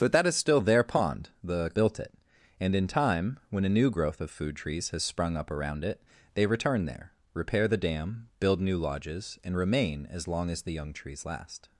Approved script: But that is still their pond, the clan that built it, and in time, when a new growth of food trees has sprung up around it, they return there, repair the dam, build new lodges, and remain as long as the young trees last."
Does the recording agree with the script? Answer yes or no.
no